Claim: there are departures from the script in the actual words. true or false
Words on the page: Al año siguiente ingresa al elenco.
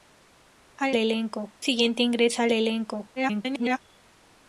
true